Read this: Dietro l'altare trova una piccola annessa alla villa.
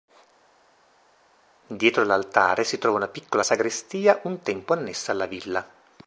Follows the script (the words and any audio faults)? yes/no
no